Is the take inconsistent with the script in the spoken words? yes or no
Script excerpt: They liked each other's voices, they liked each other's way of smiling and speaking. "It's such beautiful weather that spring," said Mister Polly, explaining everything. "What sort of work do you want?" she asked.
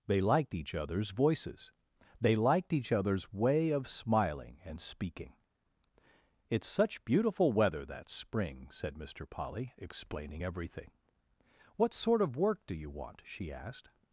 no